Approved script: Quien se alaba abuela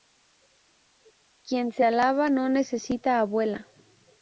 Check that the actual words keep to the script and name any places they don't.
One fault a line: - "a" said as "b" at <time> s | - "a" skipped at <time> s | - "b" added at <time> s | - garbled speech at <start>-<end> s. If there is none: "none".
- "no necesita" added at 2.3 s